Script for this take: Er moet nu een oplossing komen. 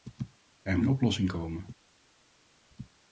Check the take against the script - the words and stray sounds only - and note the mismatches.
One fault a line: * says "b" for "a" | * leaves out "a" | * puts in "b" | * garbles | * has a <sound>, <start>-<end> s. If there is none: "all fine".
* leaves out "moet nu"